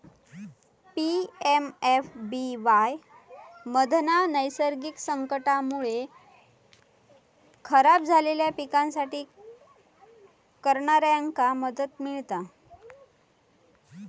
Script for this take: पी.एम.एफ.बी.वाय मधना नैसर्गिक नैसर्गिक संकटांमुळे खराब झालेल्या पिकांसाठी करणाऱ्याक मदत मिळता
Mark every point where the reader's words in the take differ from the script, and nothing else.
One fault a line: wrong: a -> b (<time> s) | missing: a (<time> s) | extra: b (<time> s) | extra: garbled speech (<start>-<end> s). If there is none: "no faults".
missing: नैसर्गिक (5.0 s)